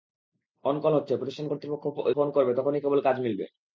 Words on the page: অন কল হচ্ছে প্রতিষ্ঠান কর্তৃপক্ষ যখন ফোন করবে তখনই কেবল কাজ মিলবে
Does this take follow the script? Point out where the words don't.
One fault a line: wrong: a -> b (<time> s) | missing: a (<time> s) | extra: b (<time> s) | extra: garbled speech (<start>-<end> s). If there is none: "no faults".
missing: যখন (1.8 s)